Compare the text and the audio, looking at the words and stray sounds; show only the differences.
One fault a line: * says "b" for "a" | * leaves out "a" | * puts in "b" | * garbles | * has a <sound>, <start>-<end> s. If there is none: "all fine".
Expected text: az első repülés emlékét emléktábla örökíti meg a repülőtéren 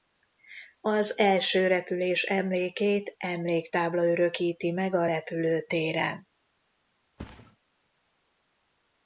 * has a thud, 7.2-7.6 s